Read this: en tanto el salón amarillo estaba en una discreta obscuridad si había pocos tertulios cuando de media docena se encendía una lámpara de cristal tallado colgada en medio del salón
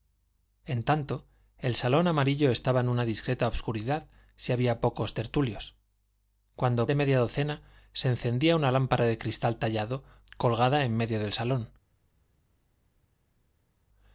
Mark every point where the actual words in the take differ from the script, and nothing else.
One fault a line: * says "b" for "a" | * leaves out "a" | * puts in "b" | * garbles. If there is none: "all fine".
all fine